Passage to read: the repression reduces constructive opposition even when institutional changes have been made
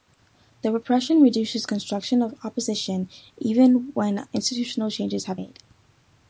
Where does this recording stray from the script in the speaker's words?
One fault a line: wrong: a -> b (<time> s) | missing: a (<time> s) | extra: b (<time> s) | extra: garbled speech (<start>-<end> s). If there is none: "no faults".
missing: been (5.4 s)